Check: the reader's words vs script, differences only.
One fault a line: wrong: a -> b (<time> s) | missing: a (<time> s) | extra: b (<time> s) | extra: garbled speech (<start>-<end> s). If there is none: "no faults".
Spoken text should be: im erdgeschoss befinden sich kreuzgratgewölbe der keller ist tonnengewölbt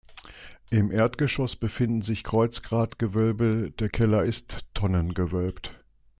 no faults